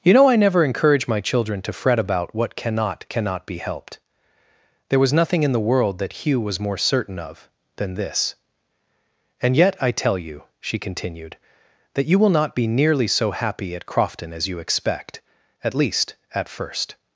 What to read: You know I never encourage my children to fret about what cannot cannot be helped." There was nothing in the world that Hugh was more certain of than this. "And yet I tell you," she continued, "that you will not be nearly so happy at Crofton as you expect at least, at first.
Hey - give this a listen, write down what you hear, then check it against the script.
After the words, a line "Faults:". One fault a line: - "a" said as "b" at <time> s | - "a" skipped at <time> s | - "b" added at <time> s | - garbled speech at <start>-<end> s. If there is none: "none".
You know I never encourage my children to fret about what cannot cannot be helped." There was nothing in the world that Hugh was more certain of than this. "And yet I tell you," she continued, "that you will not be nearly so happy at Crofton as you expect at least, at first.
Faults:
none